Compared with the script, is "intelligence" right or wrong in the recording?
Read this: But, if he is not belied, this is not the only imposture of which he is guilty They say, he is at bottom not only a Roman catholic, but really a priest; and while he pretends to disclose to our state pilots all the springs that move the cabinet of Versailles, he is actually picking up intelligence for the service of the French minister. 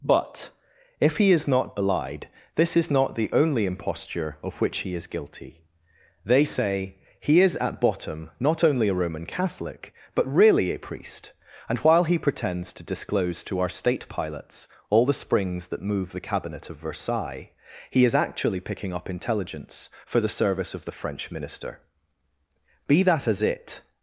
right